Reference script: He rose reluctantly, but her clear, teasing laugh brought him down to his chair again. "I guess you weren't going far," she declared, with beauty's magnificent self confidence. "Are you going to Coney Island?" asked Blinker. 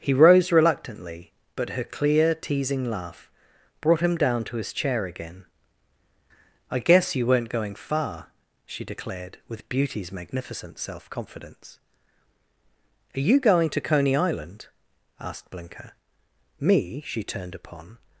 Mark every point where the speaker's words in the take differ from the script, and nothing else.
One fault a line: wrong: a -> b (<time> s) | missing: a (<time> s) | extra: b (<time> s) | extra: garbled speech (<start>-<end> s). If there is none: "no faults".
extra: Me She turned upon (16.6 s)